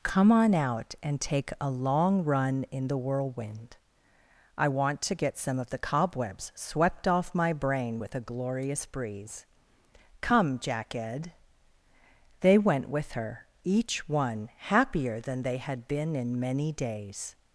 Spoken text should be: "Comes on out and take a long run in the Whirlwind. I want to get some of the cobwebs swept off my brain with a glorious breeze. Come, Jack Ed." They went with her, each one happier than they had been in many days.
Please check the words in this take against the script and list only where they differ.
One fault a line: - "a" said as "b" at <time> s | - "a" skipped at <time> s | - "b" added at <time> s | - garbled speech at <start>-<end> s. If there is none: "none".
- "Comes" said as "Come" at 0.0 s